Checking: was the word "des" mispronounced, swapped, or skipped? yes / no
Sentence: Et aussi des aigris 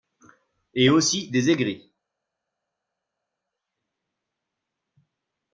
no